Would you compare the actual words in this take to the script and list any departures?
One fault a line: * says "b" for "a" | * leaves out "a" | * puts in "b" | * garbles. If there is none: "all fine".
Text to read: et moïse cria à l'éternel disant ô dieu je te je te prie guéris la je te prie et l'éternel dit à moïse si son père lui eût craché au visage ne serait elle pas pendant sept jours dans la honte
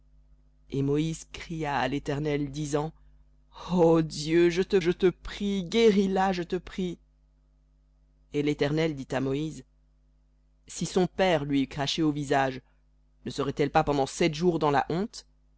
all fine